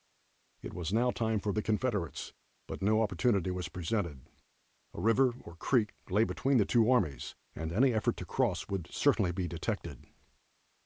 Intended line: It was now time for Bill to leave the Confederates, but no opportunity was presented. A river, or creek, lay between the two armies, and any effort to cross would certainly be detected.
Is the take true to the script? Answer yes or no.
no